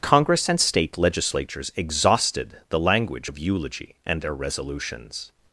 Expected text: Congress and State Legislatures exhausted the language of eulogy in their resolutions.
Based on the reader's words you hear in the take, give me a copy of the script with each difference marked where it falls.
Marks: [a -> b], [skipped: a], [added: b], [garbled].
Congress and State Legislatures exhausted the language of eulogy [in -> and] their resolutions.